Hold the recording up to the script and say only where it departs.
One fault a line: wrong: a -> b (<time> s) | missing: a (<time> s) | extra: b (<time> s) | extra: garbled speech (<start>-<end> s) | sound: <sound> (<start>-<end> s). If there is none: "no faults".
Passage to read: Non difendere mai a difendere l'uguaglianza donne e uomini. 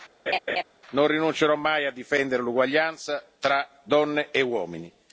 sound: laugh (0.3-0.6 s)
wrong: difendere -> rinuncerò (1.1 s)
extra: tra (3.4 s)